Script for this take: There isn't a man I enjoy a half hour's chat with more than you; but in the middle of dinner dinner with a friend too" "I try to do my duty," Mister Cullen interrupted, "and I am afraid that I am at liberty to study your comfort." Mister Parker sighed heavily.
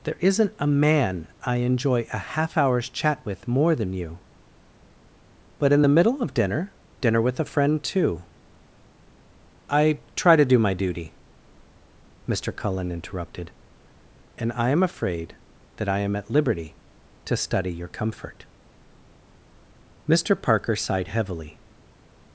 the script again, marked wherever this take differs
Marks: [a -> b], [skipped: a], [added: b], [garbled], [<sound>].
There isn't a man I enjoy a half hour's chat with more than you; but in the middle of dinner dinner with a friend too" "I try to do my duty," Mister Cullen interrupted, "and I am afraid that I am at liberty to study your comfort." Mister Parker sighed heavily.